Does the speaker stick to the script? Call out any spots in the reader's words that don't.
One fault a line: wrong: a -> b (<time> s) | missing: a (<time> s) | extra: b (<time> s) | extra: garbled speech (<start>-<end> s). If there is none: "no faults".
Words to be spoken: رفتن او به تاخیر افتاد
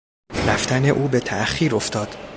no faults